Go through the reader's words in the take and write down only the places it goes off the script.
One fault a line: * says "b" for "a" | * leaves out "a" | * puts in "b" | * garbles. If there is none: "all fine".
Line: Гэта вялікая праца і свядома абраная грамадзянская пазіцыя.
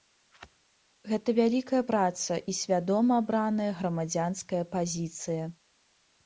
all fine